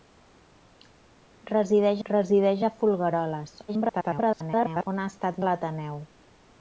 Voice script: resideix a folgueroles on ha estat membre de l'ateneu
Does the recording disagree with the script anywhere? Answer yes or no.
yes